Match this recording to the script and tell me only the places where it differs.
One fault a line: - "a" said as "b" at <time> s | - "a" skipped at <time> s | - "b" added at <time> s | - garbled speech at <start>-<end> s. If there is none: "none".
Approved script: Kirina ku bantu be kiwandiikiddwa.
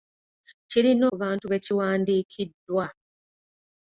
none